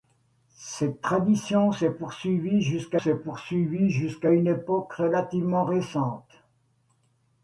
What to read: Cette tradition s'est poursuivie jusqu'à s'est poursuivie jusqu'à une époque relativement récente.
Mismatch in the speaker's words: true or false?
false